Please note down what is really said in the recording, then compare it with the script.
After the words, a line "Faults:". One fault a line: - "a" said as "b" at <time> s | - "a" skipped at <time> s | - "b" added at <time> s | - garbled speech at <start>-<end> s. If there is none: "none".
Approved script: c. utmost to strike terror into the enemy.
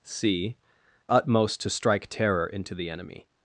c. utmost to strike terror into the enemy.
Faults:
none